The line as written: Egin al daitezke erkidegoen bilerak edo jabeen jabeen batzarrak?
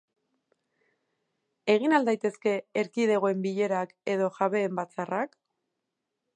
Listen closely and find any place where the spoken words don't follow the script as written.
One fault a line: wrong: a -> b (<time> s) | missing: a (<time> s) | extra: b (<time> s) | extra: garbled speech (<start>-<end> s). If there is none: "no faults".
missing: jabeen (4.8 s)